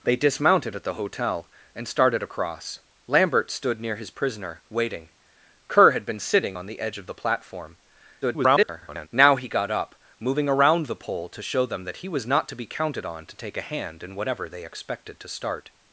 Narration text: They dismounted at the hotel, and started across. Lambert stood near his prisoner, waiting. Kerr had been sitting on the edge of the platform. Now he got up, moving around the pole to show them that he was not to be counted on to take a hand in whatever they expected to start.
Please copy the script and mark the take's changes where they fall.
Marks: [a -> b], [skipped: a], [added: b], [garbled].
They dismounted at the hotel, and started across. Lambert stood near his prisoner, waiting. Kerr had been sitting on the edge of the platform. [garbled] Now he got up, moving around the pole to show them that he was not to be counted on to take a hand in whatever they expected to start.